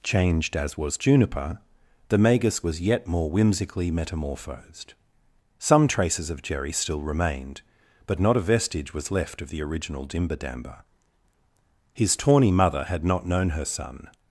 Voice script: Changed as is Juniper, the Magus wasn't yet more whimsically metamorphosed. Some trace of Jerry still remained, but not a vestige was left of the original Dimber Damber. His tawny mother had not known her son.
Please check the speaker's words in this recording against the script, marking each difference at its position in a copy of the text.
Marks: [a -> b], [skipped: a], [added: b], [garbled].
Changed as [is -> was] Juniper, the Magus [wasn't -> was] yet more whimsically metamorphosed. Some [trace -> traces] of Jerry still remained, but not a vestige was left of the original Dimber Damber. His tawny mother had not known her son.